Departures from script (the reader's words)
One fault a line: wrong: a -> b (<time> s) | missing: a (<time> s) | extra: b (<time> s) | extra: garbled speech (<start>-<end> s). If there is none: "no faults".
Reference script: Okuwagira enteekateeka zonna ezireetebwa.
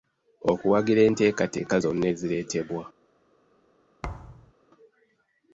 no faults